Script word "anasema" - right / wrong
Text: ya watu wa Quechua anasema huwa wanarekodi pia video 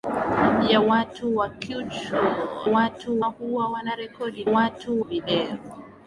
wrong